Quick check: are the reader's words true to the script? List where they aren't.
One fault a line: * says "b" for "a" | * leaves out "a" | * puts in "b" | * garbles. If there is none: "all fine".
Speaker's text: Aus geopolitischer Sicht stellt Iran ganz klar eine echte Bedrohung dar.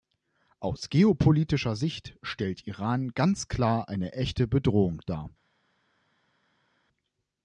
all fine